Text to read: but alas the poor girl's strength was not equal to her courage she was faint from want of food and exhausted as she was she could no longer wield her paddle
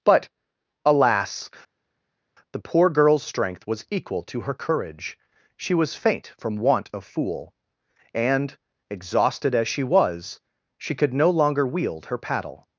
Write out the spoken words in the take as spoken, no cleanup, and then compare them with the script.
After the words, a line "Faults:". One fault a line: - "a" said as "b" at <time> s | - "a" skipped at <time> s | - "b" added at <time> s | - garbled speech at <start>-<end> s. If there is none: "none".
but alas the poor girl's strength was equal to her courage she was faint from want of fool and exhausted as she was she could no longer wield her paddle
Faults:
- "not" skipped at 3.8 s
- "food" said as "fool" at 7.0 s